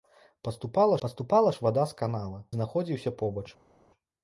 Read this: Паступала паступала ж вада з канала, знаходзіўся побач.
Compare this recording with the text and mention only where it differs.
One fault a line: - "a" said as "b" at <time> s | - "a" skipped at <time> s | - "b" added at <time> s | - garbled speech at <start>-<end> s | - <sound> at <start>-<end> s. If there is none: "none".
none